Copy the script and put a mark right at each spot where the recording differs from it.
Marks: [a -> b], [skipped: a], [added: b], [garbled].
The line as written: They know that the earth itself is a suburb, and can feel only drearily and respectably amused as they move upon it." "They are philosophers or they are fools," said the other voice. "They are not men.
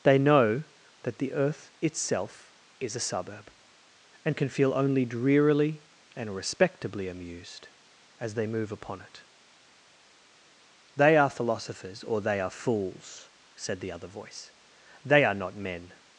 They know that the earth itself is a suburb, and can feel only drearily and respectably amused as they move upon it." "They are philosophers or they are fools," said the other voice. "They are not men.